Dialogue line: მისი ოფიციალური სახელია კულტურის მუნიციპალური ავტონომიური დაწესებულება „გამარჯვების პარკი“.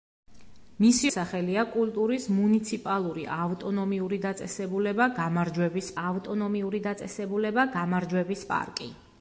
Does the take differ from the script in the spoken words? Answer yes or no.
yes